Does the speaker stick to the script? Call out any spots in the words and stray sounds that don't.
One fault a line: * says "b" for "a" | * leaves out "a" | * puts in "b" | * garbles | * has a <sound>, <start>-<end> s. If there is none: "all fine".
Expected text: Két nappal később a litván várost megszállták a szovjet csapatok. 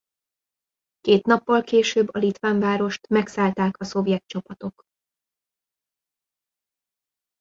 all fine